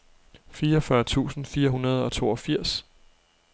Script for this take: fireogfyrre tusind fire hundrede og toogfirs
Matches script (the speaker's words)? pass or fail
pass